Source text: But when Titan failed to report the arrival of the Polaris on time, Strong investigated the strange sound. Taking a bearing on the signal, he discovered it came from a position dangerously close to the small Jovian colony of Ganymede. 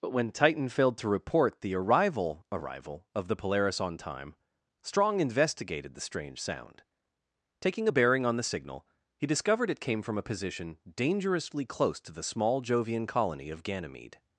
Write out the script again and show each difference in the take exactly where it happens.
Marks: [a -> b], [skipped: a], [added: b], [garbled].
But when Titan failed to report the arrival [added: arrival] of the Polaris on time, Strong investigated the strange sound. Taking a bearing on the signal, he discovered it came from a position dangerously close to the small Jovian colony of Ganymede.